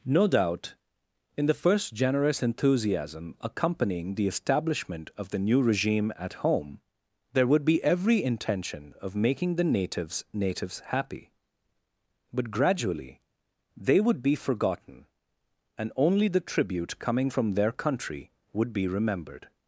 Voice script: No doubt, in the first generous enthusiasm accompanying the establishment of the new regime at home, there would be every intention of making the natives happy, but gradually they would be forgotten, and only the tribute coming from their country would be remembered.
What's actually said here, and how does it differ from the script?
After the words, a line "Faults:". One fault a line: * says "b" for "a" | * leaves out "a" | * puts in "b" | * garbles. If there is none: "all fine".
No doubt, in the first generous enthusiasm accompanying the establishment of the new regime at home, there would be every intention of making the natives natives happy, but gradually they would be forgotten, and only the tribute coming from their country would be remembered.
Faults:
* puts in "natives"